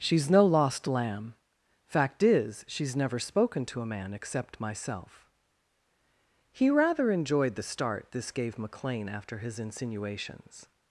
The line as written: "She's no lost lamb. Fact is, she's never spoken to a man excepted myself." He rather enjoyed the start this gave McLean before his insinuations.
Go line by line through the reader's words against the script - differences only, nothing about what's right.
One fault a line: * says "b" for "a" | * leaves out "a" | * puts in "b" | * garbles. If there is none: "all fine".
* says "except" for "excepted"
* says "after" for "before"